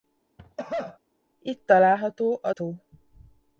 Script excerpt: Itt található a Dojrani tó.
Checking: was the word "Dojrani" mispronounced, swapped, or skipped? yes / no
yes